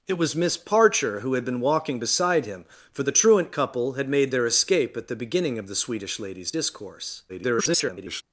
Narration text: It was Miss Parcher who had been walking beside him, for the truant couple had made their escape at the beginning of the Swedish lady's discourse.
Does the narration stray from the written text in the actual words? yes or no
yes